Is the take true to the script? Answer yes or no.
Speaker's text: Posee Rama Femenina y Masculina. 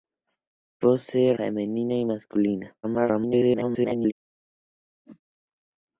no